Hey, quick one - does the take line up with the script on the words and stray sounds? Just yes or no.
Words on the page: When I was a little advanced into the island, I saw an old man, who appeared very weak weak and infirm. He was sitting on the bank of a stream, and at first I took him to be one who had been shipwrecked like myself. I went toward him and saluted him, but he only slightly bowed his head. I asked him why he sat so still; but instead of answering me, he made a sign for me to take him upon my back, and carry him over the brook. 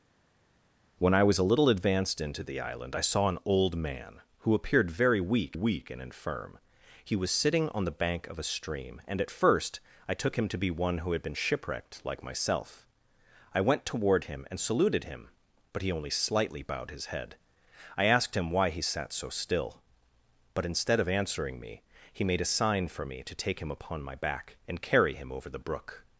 yes